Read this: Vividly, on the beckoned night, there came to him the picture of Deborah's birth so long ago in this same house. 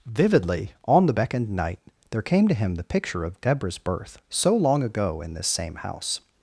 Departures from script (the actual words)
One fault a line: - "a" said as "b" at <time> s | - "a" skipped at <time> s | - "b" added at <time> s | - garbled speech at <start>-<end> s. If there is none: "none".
none